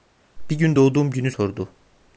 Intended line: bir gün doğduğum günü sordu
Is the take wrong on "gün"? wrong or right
right